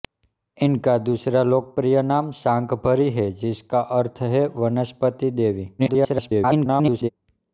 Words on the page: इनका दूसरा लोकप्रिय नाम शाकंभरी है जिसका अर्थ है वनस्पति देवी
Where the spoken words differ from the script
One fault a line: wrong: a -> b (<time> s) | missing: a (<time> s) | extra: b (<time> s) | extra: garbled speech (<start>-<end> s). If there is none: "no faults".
extra: garbled speech (5.8-7.1 s)